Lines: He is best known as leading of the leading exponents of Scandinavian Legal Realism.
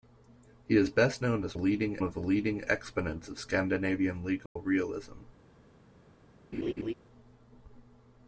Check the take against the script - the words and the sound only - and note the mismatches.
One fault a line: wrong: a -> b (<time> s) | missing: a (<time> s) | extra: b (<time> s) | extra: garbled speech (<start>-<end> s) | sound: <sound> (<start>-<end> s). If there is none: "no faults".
sound: dropout (4.5-4.6 s)
sound: laugh (6.5-6.9 s)